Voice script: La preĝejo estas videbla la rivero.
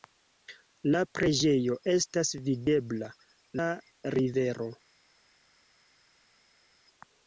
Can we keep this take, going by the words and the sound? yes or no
yes